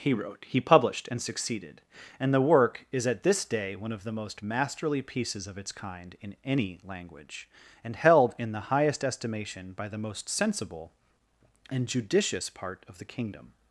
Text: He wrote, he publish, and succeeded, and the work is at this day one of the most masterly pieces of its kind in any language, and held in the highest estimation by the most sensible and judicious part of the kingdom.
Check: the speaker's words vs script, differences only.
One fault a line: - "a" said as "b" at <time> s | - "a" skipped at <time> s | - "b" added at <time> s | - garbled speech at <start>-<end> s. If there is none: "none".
- "publish" said as "published" at 0.6 s